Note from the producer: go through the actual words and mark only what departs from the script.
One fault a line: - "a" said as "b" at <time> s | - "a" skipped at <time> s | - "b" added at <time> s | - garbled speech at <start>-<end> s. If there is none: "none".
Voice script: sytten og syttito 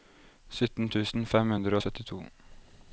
- "tusen fem hundre" added at 0.9 s